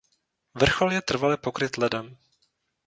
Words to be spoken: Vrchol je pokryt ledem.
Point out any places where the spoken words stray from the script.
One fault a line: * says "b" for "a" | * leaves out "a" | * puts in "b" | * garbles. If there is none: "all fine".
* puts in "trvale"